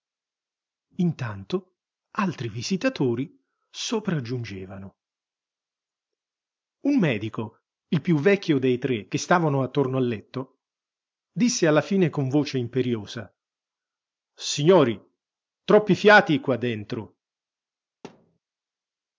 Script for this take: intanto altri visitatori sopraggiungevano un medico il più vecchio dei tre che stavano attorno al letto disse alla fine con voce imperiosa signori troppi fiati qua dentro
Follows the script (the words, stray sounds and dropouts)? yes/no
no